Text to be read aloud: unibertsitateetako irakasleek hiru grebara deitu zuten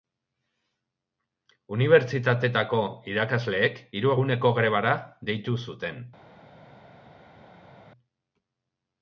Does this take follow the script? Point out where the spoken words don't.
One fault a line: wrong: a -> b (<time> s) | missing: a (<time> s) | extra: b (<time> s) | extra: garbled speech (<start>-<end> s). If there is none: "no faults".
extra: eguneko (4.1 s)